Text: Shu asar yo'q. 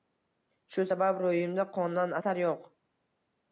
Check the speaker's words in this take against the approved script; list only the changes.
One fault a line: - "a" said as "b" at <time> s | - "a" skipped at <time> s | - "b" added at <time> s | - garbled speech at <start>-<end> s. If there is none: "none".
- "sabab ro'yimda qondan" added at 0.9 s